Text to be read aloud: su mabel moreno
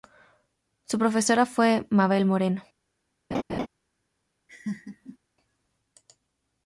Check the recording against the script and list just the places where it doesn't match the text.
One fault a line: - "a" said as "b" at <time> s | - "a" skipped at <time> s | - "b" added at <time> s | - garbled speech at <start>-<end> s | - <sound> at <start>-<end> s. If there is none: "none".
- "profesora fue" added at 1.0 s
- laugh at 3.3-3.7 s
- laugh at 4.5-5.2 s